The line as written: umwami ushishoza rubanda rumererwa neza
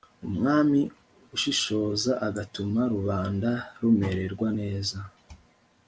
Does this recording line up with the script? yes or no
no